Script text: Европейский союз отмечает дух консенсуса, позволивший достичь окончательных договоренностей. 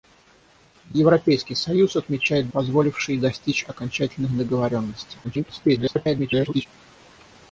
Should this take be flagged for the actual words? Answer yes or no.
yes